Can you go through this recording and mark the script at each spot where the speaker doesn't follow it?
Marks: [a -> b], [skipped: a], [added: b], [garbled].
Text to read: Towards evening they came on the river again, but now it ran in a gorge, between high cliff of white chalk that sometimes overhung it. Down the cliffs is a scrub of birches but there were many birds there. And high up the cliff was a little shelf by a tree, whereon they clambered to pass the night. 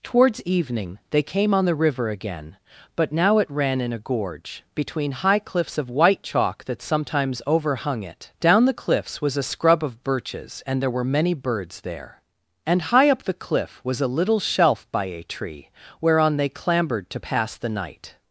Towards evening they came on the river again, but now it ran in a gorge, between high [cliff -> cliffs] of white chalk that sometimes overhung it. Down the cliffs [is -> was] a scrub of birches [but -> and] there were many birds there. And high up the cliff was a little shelf by a tree, whereon they clambered to pass the night.